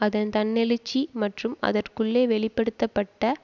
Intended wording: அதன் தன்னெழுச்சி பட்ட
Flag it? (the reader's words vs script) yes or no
yes